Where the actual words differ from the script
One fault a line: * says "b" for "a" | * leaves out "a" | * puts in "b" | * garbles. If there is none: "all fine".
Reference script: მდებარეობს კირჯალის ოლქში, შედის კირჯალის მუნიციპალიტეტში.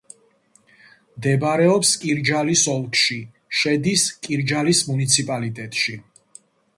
all fine